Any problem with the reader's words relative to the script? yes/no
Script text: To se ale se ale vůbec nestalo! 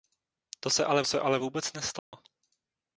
no